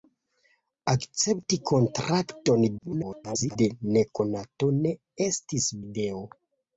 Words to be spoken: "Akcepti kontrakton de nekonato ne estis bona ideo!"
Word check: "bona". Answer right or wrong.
wrong